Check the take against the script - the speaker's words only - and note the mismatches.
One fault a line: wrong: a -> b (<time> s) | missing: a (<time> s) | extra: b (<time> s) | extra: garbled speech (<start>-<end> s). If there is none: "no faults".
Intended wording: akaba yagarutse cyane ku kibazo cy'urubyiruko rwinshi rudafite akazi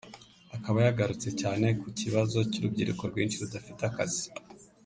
no faults